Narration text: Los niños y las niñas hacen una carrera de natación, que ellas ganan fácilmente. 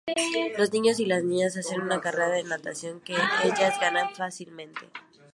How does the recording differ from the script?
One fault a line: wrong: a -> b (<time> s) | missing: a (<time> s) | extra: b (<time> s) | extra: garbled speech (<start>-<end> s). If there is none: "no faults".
no faults